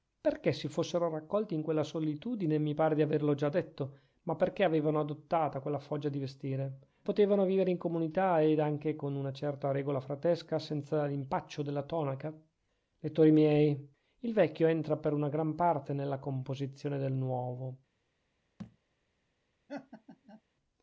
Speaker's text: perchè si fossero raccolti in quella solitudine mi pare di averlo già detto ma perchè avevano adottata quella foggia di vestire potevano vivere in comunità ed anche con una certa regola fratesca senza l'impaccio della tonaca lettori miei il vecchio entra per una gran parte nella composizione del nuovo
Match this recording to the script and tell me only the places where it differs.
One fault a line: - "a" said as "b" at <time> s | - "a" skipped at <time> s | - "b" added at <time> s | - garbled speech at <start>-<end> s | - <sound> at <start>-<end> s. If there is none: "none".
- thud at 18.6-18.8 s
- laugh at 19.7-20.4 s